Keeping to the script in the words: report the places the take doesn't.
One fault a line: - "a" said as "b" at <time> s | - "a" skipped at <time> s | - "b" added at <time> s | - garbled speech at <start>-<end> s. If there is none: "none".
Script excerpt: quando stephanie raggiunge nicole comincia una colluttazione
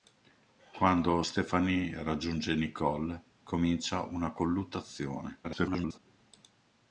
- garbled speech at 5.4-6.0 s